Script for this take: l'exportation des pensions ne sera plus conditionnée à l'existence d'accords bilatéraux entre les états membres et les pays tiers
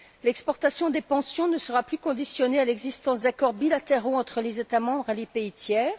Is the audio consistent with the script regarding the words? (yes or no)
yes